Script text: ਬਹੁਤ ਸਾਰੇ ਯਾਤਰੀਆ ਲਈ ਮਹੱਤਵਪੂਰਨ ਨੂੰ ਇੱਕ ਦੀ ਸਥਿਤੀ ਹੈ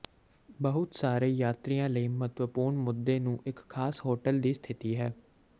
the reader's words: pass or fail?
fail